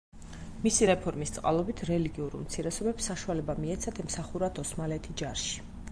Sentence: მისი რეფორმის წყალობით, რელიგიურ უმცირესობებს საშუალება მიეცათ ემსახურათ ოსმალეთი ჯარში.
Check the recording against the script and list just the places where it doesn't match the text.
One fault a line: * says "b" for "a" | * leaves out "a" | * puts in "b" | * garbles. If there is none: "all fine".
all fine